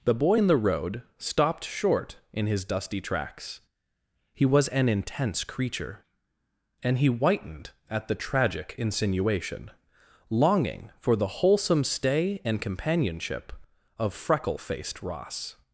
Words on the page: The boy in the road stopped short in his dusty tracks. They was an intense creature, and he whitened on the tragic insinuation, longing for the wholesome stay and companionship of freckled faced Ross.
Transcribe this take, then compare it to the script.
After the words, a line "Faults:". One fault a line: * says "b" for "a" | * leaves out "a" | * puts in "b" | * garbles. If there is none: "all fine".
The boy in the road stopped short in his dusty tracks. He was an intense creature, and he whitened at the tragic insinuation, longing for the wholesome stay and companionship of freckle faced Ross.
Faults:
* says "He" for "They"
* says "at" for "on"
* says "freckle" for "freckled"